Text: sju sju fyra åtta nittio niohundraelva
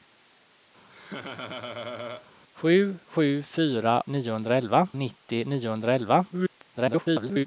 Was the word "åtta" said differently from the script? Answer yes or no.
yes